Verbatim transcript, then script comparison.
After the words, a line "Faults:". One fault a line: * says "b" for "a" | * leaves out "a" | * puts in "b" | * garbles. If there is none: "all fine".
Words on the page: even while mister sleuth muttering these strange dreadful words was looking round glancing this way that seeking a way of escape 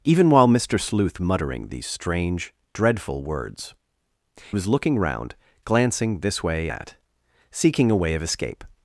even while mister sleuth muttering these strange dreadful words was looking round glancing this way that seeking a way of escape
Faults:
all fine